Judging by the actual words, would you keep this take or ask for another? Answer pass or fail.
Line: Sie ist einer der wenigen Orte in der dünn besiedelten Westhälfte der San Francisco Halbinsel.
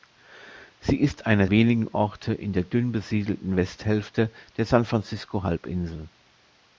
fail